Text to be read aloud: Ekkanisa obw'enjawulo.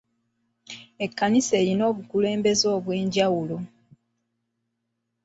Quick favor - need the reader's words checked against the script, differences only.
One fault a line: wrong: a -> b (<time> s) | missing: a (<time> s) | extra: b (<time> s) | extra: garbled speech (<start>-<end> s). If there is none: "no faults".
extra: erina obukulembeze (1.6 s)